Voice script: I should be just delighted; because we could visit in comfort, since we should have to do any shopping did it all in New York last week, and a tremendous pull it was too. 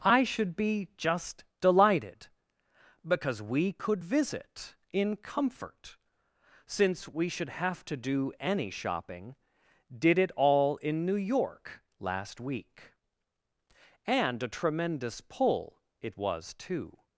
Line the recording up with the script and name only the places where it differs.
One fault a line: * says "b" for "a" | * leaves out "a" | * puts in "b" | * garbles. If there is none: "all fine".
all fine